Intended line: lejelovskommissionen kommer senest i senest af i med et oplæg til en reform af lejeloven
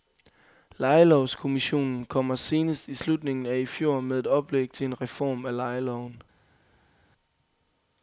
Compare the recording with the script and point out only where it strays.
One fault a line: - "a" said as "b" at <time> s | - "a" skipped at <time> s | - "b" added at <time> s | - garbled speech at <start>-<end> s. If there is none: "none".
- "senest" said as "slutningen" at 2.9 s
- "fjor" added at 3.6 s